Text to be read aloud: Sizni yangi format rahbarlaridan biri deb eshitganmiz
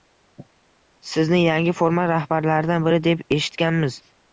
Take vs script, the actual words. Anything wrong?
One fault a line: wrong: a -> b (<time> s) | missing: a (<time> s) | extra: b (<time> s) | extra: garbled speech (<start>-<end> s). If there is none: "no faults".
no faults